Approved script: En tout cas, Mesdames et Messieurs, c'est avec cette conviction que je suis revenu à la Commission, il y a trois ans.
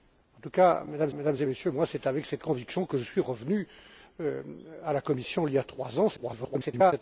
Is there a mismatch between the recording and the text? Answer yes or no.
yes